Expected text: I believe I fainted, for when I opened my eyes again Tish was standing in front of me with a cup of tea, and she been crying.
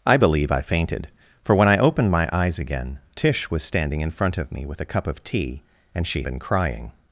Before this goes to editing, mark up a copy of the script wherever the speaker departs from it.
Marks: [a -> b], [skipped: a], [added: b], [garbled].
I believe I fainted, for when I opened my eyes again Tish was standing in front of me with a cup of tea, and she been crying.